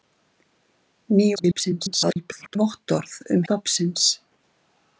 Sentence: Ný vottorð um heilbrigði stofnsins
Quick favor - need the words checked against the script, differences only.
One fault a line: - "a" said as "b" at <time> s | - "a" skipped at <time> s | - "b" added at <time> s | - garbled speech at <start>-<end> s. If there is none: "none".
- garbled speech at 1.4-2.6 s
- "heilbrigði" skipped at 3.4 s